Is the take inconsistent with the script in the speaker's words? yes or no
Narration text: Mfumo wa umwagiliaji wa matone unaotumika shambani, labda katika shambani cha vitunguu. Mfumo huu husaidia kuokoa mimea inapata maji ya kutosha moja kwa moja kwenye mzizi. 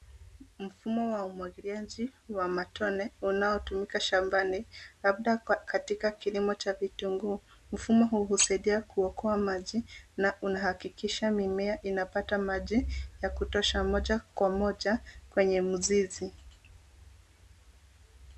yes